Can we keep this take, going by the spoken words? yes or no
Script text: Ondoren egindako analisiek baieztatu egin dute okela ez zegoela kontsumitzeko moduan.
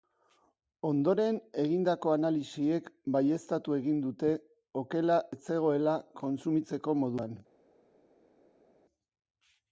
yes